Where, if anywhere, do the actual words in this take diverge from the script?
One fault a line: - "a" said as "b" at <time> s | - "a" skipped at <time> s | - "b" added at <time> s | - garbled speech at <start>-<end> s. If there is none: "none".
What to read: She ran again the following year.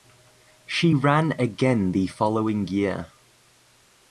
none